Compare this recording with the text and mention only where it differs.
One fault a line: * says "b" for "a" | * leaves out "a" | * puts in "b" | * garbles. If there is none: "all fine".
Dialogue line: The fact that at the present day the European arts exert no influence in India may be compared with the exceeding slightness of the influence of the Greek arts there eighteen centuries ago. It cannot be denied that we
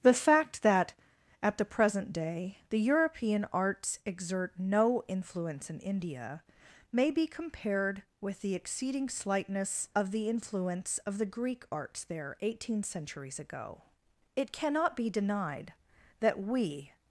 all fine